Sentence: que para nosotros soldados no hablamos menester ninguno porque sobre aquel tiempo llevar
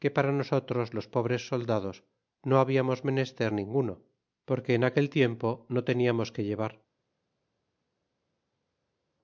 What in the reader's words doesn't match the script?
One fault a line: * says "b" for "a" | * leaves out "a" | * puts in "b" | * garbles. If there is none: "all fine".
* puts in "los pobres"
* says "en" for "sobre"
* puts in "no teniamos que"